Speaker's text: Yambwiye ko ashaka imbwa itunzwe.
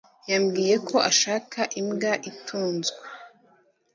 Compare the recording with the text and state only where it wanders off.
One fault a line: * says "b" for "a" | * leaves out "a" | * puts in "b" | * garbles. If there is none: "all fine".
all fine